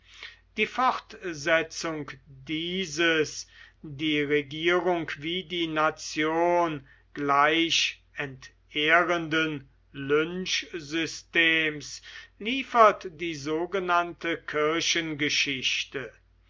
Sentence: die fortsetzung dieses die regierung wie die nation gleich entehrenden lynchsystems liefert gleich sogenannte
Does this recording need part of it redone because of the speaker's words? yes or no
yes